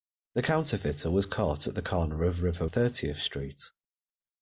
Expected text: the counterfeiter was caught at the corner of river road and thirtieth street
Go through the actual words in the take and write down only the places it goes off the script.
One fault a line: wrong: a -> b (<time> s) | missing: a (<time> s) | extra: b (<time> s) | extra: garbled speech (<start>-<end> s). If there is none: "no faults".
missing: road and (2.7 s)